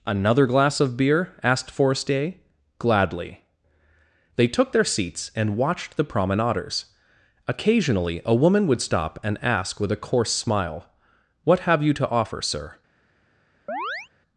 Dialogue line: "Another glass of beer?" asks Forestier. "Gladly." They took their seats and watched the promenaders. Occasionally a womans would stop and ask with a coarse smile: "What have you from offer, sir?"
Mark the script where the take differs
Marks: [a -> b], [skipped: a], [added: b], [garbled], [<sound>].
"Another glass of beer?" [asks -> asked] Forestier. "Gladly." They took their seats and watched the promenaders. Occasionally a [womans -> woman] would stop and ask with a coarse smile: "What have you [from -> to] offer, sir?" [chirp]